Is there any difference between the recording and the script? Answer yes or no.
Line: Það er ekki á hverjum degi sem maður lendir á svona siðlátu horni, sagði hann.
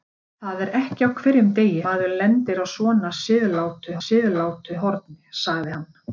yes